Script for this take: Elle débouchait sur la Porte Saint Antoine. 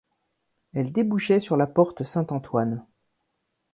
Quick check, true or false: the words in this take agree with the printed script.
true